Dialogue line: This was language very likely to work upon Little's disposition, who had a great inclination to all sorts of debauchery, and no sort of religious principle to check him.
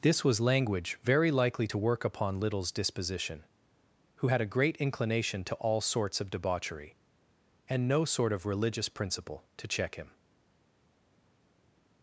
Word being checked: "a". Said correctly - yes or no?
yes